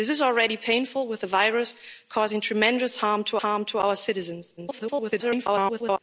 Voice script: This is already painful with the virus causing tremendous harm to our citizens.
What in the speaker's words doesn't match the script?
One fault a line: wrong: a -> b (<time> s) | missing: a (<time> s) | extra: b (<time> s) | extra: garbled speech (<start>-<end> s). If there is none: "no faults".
extra: harm to (3.4 s)
extra: garbled speech (4.6-6.0 s)